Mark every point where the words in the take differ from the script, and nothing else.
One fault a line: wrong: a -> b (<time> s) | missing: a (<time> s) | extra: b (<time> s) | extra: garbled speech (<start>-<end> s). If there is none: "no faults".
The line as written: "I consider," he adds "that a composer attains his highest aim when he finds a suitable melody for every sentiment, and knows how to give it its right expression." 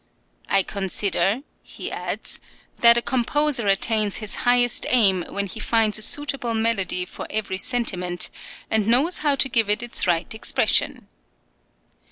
no faults